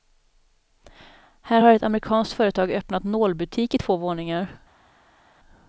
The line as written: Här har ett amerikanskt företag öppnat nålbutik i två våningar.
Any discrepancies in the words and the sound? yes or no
no